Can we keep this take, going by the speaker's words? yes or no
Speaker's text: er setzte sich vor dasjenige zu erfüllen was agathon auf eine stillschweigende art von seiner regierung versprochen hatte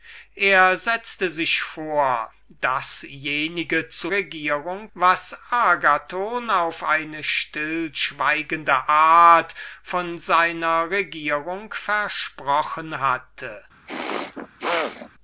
no